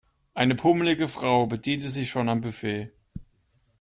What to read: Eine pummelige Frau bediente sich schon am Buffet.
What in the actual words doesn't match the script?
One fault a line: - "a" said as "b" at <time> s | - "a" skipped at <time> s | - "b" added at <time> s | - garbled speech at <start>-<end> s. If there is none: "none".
none